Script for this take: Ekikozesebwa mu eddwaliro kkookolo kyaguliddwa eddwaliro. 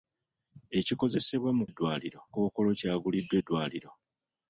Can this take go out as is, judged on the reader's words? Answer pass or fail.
pass